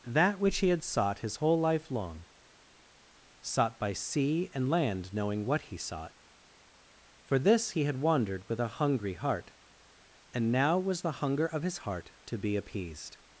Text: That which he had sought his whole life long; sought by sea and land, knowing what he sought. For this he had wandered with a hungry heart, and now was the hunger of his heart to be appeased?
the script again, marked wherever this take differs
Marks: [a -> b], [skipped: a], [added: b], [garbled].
That which he had sought his whole life long; sought by sea and land, knowing what he sought. For this he had wandered with a hungry heart, and now was the hunger of his heart to be appeased?